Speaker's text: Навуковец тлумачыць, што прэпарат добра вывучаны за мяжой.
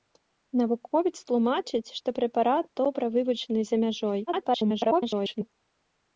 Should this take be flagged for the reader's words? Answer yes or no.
yes